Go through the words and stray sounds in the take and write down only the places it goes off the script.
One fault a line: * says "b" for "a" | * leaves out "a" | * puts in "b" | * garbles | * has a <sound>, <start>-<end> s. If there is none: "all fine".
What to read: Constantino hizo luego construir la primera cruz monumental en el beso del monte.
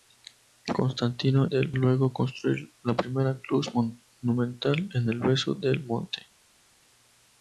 * says "del" for "hizo"